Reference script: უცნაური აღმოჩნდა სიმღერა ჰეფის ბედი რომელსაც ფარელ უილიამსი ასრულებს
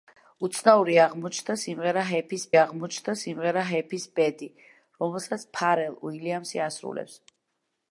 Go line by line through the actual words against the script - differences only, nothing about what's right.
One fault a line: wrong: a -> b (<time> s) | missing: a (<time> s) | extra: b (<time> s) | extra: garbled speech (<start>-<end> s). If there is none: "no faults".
extra: აღმოჩნდა სიმღერა ჰეფის (2.6 s)